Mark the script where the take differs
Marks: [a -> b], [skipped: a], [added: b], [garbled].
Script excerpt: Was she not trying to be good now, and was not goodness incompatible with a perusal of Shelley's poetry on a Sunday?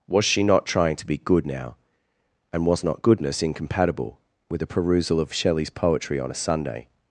Was she not trying to be good now, and was not goodness incompatible with a perusal of Shelley's poetry on a Sunday?